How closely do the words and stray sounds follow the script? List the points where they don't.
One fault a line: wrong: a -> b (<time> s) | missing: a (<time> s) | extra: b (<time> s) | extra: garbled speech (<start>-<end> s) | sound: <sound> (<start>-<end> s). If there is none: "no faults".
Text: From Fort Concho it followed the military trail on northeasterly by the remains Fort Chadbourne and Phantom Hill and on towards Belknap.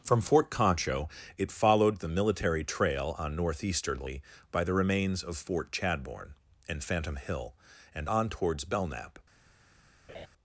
extra: of (5.2 s)
sound: laugh (10.1-10.3 s)